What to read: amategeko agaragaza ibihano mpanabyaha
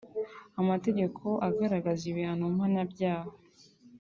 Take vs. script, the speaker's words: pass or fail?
pass